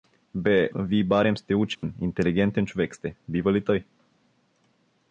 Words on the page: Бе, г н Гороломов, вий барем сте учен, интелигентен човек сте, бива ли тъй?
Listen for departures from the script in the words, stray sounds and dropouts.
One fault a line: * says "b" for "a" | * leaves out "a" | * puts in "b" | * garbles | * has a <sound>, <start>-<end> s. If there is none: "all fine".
* leaves out "г н Гороломов"
* has a dropout, 1.8-1.8 s